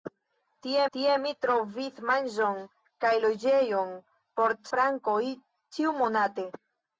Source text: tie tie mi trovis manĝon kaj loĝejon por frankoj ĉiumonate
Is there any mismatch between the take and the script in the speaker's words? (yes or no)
no